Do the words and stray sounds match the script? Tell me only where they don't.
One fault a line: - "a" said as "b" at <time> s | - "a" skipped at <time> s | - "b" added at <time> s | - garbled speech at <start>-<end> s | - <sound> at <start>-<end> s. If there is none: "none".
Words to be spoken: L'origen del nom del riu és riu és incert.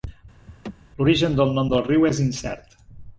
- laugh at 0.5-0.7 s
- "riu és" skipped at 2.2 s